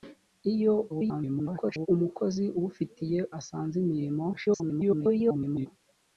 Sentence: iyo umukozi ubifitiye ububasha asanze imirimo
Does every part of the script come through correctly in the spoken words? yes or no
no